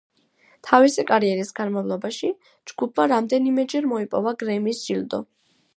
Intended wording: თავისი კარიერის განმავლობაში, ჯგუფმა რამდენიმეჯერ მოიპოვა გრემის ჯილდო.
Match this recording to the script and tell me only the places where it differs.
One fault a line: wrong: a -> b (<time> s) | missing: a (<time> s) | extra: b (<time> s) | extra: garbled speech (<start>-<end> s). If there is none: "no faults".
no faults